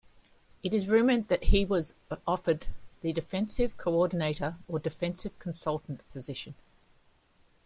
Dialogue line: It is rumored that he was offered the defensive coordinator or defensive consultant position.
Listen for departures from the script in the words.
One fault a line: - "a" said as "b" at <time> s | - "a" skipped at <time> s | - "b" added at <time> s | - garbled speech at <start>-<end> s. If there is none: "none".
none